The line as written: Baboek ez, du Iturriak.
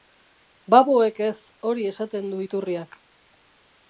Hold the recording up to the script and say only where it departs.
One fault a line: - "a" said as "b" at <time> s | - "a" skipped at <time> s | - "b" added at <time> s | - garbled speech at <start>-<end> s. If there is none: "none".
- "hori esaten" added at 1.7 s